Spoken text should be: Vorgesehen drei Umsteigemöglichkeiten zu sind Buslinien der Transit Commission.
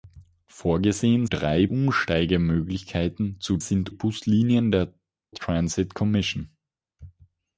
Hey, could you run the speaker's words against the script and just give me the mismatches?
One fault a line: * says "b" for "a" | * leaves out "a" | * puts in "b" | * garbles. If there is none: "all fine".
all fine